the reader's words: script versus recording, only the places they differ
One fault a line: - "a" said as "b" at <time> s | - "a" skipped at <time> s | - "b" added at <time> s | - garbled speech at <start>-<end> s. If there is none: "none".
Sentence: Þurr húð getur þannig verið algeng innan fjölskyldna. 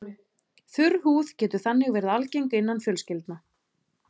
none